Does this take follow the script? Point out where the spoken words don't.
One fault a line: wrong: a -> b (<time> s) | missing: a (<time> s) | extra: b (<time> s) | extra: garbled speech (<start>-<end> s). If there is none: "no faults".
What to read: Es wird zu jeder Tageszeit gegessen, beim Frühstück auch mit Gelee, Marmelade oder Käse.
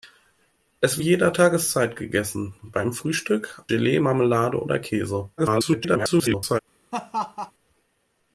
missing: wird zu (1.0 s)
missing: auch mit (3.6 s)
extra: garbled speech (5.4-6.6 s)